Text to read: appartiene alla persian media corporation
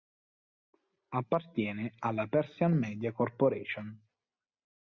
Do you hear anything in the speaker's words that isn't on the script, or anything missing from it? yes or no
no